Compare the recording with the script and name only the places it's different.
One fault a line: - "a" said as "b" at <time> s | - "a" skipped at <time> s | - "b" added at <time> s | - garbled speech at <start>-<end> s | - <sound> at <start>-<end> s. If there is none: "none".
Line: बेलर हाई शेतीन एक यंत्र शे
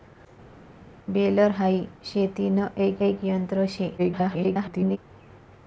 - "एक" added at 3.0 s
- garbled speech at 4.0-5.0 s